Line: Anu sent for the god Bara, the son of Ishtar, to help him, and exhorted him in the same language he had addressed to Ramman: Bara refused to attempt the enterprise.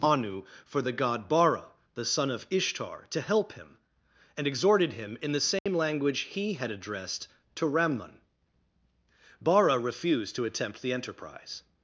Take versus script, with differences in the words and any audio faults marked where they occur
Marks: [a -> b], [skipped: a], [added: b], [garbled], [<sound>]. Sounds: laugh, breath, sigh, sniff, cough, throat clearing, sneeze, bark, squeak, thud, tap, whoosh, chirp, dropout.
Anu [skipped: sent] for the god Bara, the son of Ishtar, to help him, and exhorted him in the same [dropout] language he had addressed to Ramman: Bara refused to attempt the enterprise.